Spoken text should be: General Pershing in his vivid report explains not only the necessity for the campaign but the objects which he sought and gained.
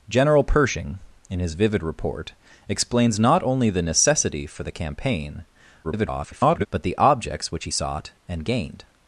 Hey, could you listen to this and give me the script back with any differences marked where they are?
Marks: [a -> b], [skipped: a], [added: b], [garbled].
General Pershing in his vivid report explains not only the necessity for the campaign [garbled] but the objects which he sought and gained.